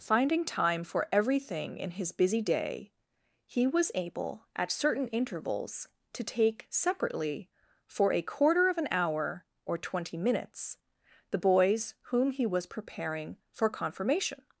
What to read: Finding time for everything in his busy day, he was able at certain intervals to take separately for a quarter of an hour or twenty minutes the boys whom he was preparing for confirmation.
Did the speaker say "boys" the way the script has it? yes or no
yes